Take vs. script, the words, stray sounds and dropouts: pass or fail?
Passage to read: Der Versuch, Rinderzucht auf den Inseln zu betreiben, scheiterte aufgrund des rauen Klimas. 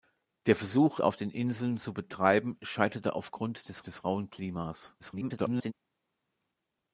fail